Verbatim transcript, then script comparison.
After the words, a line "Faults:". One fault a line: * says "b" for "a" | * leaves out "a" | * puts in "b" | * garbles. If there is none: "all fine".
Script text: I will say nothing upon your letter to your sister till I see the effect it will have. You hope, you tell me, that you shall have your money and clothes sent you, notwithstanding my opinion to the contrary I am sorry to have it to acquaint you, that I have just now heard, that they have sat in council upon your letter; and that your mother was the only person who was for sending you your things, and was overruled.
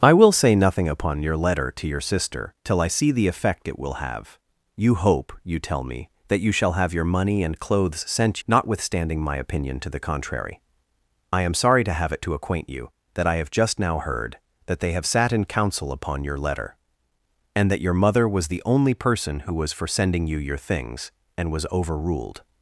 I will say nothing upon your letter to your sister till I see the effect it will have. You hope, you tell me, that you shall have your money and clothes sent notwithstanding my opinion to the contrary I am sorry to have it to acquaint you, that I have just now heard, that they have sat in council upon your letter; and that your mother was the only person who was for sending you your things, and was overruled.
Faults:
* leaves out "you"